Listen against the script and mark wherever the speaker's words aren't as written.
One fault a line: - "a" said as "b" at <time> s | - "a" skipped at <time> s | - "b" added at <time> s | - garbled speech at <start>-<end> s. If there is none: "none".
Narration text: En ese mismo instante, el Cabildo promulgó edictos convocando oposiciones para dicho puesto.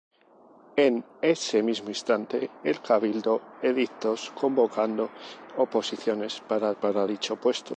- "promulgó" skipped at 3.5 s
- "para" added at 6.7 s